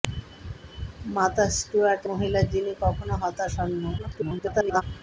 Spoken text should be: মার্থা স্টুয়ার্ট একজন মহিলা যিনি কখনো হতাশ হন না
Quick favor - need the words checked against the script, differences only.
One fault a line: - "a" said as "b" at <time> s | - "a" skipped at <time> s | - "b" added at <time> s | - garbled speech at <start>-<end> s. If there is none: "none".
- "একজন" skipped at 2.0 s
- garbled speech at 4.0-4.8 s